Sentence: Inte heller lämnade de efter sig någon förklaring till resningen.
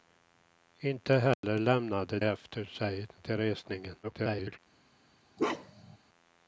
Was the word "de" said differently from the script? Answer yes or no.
yes